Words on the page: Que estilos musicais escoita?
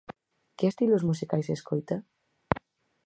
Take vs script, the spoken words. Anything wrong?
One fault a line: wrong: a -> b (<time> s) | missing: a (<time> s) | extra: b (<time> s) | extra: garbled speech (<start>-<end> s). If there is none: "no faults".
no faults